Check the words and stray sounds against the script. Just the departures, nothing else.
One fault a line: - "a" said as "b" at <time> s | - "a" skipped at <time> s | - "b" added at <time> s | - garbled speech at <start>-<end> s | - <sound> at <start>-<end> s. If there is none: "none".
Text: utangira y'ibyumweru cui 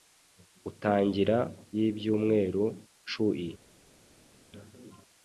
none